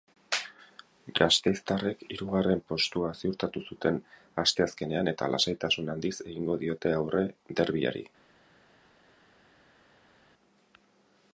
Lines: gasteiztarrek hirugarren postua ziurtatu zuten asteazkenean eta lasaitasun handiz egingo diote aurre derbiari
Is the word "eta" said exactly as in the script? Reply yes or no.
yes